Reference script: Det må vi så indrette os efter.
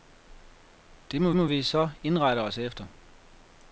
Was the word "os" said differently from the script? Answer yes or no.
no